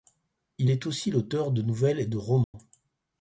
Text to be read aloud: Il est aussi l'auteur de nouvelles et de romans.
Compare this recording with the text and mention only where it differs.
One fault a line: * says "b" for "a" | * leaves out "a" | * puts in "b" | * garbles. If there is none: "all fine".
all fine